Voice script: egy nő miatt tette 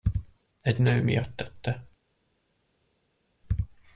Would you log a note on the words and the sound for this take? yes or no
no